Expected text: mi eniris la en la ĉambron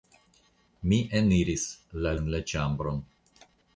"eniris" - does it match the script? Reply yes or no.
yes